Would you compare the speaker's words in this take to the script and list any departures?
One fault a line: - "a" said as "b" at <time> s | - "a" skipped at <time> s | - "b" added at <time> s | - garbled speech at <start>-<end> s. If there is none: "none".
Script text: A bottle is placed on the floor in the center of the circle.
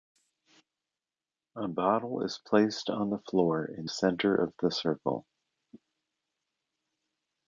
- "the" skipped at 3.9 s